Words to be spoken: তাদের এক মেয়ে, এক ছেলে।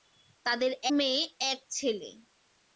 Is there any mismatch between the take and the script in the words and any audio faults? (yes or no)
yes